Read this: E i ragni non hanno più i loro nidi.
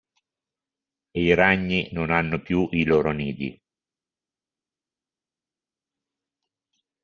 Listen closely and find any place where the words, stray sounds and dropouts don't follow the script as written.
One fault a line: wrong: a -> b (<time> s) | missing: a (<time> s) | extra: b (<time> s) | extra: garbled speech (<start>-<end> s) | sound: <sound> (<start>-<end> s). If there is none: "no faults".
no faults